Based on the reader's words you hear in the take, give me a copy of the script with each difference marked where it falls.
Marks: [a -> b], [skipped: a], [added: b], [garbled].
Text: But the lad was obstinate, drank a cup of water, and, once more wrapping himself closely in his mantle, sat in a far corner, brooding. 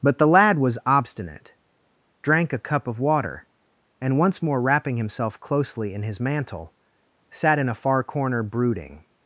But the lad was obstinate, drank a cup of water, and, once more wrapping himself closely in his mantle, sat in a far corner, brooding.